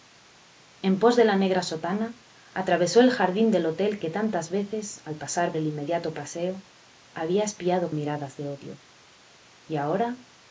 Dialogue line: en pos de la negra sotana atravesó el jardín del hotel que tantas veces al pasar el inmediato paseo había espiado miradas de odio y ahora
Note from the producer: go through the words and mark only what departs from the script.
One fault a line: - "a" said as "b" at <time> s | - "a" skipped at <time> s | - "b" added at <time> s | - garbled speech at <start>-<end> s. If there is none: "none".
none